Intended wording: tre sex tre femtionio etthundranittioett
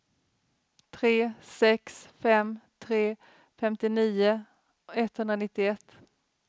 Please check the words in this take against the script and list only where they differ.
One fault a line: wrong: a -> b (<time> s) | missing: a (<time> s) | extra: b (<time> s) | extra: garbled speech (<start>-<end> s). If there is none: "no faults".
extra: fem (2.2 s)